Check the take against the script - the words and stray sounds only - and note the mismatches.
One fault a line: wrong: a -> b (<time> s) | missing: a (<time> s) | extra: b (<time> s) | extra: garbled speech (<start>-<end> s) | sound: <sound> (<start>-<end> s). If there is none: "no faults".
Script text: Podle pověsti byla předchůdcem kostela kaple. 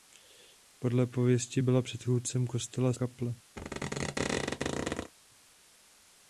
sound: squeak (3.6-5.1 s)